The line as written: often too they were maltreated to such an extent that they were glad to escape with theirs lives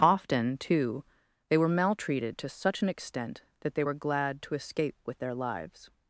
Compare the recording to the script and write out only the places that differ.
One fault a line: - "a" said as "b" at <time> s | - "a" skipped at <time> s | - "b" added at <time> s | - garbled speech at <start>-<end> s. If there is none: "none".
- "theirs" said as "their" at 5.2 s